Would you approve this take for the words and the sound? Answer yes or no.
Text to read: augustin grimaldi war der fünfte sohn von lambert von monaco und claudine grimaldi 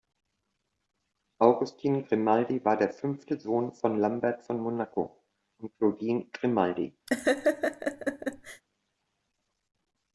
no